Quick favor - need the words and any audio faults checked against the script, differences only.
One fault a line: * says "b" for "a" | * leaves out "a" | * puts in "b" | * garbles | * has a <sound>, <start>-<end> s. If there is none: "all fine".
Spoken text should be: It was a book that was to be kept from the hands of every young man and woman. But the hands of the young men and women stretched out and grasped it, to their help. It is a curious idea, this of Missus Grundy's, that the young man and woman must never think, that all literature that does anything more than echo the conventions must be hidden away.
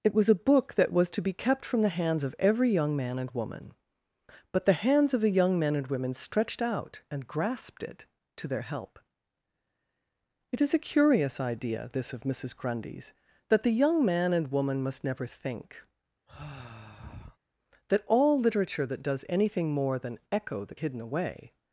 * has a sigh, 16.3-17.4 s
* leaves out "conventions must be"